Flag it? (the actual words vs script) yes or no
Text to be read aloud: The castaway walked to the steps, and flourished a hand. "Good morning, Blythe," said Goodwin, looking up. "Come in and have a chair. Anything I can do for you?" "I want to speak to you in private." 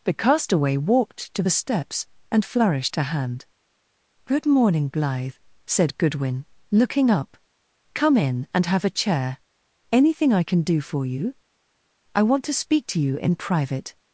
no